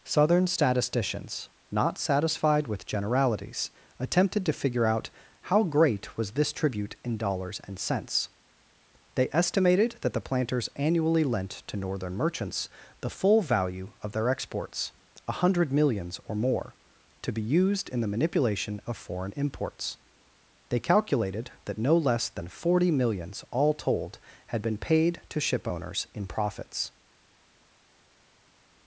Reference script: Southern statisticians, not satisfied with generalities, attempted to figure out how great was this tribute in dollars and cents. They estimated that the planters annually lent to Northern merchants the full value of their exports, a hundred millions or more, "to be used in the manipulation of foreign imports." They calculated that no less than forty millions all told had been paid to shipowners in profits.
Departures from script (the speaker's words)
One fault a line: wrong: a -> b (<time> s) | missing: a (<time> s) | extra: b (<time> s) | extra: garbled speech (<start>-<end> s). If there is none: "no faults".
no faults